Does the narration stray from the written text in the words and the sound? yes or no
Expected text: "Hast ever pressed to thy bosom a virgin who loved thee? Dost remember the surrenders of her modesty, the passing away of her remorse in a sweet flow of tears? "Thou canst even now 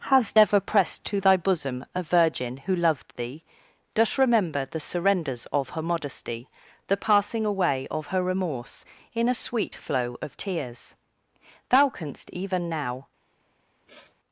yes